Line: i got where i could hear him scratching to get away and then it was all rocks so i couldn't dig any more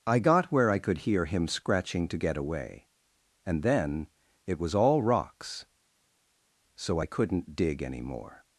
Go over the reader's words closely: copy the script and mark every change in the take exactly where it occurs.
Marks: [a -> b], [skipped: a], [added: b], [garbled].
i got where i could hear him scratching to get away and then it was all rocks so i couldn't dig any more